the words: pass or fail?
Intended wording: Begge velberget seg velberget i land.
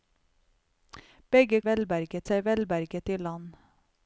pass